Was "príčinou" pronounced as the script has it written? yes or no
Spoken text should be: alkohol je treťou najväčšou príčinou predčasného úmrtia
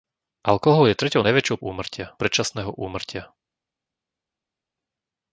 no